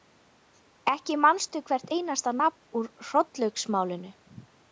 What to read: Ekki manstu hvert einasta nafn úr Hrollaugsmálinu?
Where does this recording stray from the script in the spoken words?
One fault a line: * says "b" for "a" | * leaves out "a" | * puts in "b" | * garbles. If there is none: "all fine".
all fine